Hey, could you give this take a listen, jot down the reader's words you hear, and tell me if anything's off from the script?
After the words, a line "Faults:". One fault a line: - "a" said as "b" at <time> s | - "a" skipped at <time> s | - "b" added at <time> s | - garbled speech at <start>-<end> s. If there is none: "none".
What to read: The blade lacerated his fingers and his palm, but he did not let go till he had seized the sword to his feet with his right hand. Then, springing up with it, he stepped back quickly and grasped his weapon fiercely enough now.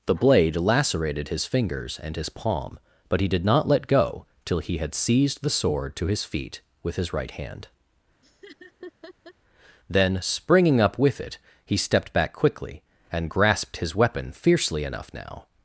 The blade lacerated his fingers and his palm, but he did not let go till he had seized the sword to his feet with his right hand. Then, springing up with it, he stepped back quickly and grasped his weapon fiercely enough now.
Faults:
none